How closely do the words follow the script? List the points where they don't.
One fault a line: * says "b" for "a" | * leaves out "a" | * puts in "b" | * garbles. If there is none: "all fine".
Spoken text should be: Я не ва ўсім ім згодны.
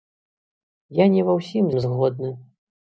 all fine